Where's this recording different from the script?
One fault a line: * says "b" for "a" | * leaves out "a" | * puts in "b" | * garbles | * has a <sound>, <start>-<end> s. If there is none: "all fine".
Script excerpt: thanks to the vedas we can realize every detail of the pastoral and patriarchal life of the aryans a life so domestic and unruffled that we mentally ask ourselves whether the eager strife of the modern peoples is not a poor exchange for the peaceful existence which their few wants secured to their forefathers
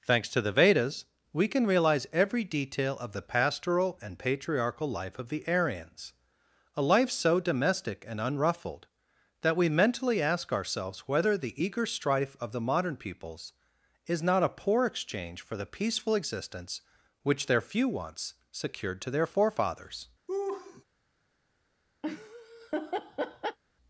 * has a laugh, 20.3-20.8 s
* has a laugh, 22.0-23.6 s